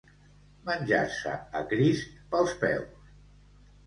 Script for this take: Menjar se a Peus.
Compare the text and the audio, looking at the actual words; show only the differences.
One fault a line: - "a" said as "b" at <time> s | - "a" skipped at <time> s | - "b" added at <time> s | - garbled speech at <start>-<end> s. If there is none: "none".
- "Crist pels" added at 1.7 s